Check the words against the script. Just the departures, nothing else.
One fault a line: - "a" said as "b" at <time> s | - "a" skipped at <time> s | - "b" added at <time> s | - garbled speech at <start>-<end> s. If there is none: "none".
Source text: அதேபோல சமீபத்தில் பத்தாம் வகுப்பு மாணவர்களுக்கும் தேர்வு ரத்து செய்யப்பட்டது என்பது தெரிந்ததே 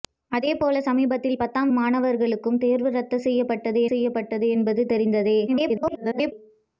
- "வகுப்பு" skipped at 1.7 s
- "செய்யப்பட்டது" added at 3.8 s
- garbled speech at 5.5-6.3 s